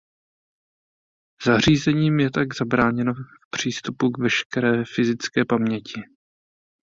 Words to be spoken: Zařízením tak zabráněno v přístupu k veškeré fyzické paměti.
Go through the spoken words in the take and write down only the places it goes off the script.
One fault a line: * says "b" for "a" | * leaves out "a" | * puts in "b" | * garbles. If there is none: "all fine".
* puts in "je"